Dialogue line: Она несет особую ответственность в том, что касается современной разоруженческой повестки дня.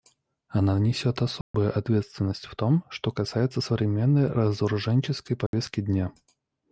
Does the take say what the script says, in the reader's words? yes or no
yes